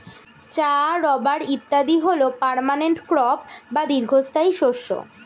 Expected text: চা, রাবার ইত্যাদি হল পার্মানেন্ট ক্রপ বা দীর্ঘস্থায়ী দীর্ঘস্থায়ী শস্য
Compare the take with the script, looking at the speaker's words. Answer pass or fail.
fail